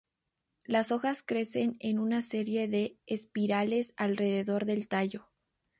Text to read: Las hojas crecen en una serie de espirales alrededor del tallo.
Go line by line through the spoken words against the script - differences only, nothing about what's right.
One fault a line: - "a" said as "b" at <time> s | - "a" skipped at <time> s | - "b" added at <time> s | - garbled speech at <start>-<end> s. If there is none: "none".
none